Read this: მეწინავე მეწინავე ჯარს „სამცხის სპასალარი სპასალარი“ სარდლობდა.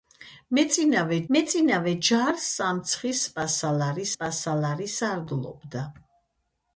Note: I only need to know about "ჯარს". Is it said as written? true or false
true